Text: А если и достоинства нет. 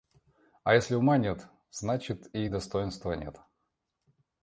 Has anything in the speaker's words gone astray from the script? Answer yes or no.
yes